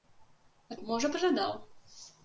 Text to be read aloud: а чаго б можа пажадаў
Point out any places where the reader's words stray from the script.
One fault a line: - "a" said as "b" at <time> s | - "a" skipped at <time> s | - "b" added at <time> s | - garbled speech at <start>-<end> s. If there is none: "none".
- "чаго" skipped at 0.8 s